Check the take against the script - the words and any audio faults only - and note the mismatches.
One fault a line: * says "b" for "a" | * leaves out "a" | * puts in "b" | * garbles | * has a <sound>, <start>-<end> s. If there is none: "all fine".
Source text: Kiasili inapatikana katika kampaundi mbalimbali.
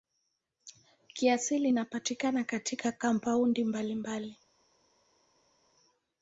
all fine